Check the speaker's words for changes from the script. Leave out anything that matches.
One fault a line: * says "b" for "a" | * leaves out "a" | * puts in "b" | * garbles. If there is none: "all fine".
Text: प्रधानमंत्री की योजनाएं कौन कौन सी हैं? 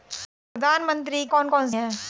* leaves out "की योजनाएं"
* leaves out "सी"